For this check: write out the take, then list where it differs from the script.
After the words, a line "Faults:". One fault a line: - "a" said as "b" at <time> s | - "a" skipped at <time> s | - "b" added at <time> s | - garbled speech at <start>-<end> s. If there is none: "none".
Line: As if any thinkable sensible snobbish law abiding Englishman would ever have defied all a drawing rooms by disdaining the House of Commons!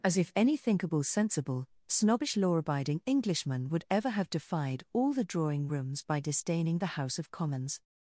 As if any thinkable sensible snobbish law abiding Englishman would ever have defied all the drawing rooms by disdaining the House of Commons!
Faults:
- "a" said as "the" at 5.1 s